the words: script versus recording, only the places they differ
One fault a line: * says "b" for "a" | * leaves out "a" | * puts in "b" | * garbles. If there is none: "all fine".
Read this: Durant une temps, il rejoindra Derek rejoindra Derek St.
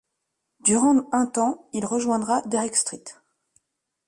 * says "un" for "une"
* leaves out "rejoindra Derek"